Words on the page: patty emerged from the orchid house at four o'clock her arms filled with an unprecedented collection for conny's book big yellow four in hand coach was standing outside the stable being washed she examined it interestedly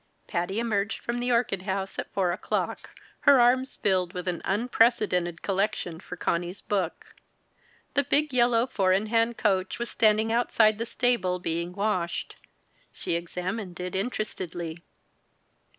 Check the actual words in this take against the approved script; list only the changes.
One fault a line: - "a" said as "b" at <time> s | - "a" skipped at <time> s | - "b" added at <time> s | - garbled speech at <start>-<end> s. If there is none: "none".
- "the" added at 7.9 s